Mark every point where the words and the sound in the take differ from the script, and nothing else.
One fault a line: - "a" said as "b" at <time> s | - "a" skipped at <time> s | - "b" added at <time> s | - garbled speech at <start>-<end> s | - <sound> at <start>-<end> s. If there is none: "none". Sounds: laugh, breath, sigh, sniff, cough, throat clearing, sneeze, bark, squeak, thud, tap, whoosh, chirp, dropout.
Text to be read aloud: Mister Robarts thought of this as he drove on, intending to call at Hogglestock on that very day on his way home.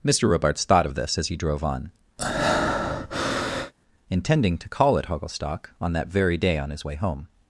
- breath at 2.2-3.7 s